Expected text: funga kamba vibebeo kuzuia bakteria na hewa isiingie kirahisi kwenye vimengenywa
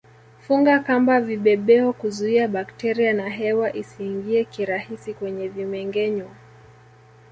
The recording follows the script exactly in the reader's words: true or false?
true